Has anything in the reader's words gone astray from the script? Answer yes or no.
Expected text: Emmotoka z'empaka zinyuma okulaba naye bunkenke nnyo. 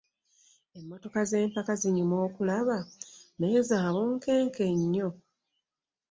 yes